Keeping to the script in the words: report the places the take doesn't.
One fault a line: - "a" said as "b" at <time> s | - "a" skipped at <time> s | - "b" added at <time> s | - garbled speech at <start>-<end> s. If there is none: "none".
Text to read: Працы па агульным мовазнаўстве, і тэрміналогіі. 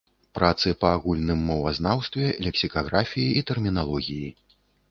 - "лексікаграфіі" added at 2.5 s